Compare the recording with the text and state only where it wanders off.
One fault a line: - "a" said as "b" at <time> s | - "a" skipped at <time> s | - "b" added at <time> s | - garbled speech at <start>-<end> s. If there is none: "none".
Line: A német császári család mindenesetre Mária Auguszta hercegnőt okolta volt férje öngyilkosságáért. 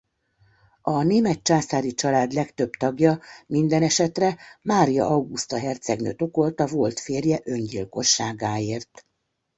- "legtöbb tagja" added at 2.3 s